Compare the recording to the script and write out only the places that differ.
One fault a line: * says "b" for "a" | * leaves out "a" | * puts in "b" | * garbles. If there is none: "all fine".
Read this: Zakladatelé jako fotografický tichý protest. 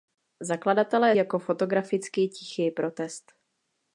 all fine